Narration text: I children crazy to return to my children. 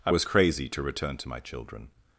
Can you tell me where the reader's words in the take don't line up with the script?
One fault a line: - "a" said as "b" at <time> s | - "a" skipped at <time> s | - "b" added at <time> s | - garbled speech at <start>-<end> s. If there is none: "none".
- "children" said as "was" at 0.1 s